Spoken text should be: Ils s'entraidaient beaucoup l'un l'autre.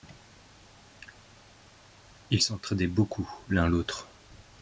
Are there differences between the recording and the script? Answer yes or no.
no